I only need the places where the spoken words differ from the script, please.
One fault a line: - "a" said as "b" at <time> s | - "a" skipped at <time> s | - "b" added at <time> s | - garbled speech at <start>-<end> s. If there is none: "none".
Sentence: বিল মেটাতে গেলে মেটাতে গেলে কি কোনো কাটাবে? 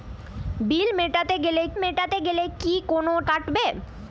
none